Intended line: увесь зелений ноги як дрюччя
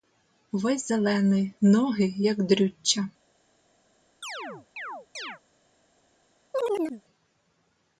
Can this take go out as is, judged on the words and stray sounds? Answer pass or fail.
fail